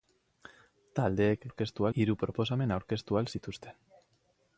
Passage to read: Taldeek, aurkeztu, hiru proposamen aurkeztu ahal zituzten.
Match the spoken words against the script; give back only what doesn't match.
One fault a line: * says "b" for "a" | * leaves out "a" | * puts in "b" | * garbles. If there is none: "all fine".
all fine